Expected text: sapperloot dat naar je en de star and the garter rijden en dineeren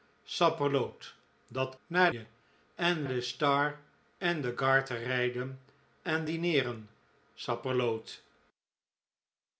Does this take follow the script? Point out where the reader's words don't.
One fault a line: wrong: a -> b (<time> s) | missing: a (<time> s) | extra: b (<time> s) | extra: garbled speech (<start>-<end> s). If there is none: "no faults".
no faults